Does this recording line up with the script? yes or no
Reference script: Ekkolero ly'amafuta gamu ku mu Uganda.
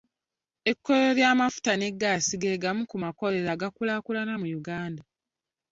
no